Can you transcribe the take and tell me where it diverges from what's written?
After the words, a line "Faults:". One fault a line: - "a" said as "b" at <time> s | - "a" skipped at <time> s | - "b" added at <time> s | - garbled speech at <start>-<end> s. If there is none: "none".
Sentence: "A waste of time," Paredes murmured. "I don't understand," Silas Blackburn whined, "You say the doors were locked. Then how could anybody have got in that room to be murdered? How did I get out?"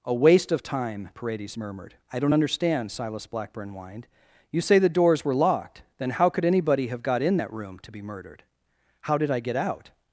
"A waste of time," Paredes murmured. "I don't understand," Silas Blackburn whined, "You say the doors were locked. Then how could anybody have got in that room to be murdered? How did I get out?"
Faults:
none